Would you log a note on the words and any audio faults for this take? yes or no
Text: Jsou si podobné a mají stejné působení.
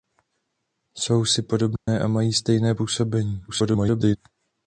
yes